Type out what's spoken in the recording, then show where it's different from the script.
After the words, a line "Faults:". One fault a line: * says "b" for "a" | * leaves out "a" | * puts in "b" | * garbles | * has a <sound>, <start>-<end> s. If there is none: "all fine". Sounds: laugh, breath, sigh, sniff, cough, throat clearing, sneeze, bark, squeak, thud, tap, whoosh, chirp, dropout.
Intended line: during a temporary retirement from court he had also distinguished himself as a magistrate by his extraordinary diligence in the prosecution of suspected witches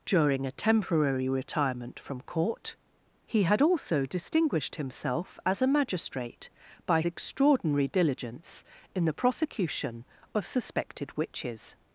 during a temporary retirement from court he had also distinguished himself as a magistrate by extraordinary diligence in the prosecution of suspected witches
Faults:
* leaves out "his"